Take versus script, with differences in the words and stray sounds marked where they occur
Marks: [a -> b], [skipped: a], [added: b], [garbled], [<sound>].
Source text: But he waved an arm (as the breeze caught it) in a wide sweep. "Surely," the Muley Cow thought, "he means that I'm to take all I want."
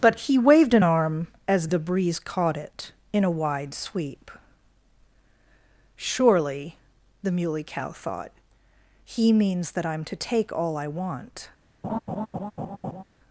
But he waved an arm (as the breeze caught it) in a wide sweep. "Surely," the Muley Cow thought, "he means that I'm to take all I want." [laugh]